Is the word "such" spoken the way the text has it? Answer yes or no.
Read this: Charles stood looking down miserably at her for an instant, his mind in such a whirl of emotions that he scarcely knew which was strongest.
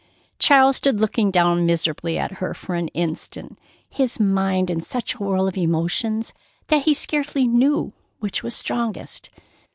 yes